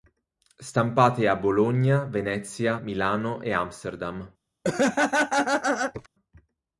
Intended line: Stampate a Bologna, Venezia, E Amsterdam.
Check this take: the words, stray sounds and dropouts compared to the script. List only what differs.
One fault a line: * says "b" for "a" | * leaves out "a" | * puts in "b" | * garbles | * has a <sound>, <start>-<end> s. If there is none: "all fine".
* puts in "Milano"
* has a laugh, 4.6-6.1 s